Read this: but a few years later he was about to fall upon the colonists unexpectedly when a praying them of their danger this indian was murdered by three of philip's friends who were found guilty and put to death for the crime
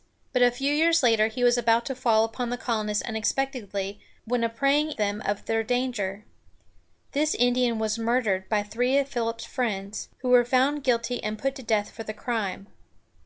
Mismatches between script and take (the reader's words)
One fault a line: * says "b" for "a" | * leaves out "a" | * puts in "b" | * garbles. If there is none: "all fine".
all fine